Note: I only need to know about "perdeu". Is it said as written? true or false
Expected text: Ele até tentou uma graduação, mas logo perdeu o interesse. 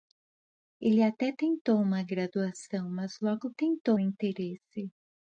false